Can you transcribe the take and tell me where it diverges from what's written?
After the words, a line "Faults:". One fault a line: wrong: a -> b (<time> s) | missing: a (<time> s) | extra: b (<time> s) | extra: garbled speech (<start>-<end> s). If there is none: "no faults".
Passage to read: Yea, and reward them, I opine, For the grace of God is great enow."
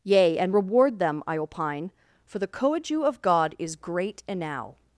Yea, and reward them, I opine, For the coadju of God is great enow."
Faults:
wrong: grace -> coadju (2.5 s)